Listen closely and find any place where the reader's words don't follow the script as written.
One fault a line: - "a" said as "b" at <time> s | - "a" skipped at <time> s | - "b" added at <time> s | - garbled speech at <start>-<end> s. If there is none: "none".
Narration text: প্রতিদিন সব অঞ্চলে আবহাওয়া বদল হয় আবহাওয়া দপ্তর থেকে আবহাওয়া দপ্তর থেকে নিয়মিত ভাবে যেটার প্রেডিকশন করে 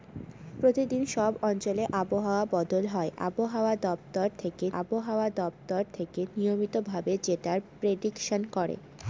none